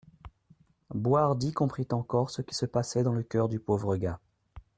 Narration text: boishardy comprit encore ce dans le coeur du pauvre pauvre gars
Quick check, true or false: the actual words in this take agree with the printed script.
false